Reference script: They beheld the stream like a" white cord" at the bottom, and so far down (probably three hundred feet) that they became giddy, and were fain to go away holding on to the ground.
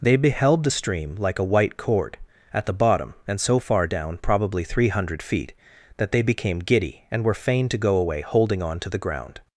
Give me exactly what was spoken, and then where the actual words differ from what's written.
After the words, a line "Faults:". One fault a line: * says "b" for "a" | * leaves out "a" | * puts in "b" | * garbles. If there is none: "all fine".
They beheld the stream like a" white cord" at the bottom, and so far down (probably three hundred feet) that they became giddy, and were fain to go away holding on to the ground.
Faults:
all fine